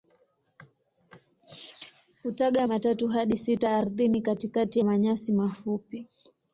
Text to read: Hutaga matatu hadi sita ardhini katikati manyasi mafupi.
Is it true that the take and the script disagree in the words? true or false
false